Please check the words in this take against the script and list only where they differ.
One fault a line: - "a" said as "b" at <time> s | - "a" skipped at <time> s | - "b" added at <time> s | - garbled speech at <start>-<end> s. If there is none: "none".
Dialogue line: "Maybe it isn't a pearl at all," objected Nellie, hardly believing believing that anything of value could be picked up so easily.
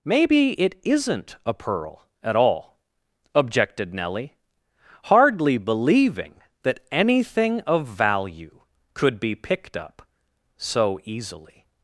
- "believing" skipped at 6.4 s